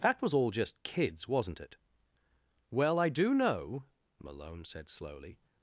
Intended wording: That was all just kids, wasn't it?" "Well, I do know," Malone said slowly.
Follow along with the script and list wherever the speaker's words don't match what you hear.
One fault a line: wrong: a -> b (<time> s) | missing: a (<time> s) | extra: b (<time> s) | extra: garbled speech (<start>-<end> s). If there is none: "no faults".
no faults